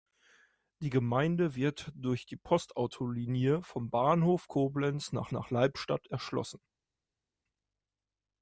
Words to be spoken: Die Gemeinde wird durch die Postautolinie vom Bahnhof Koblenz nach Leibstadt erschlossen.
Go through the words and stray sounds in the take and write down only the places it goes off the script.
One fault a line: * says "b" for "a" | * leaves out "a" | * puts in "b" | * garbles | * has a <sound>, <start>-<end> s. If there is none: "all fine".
* puts in "nach"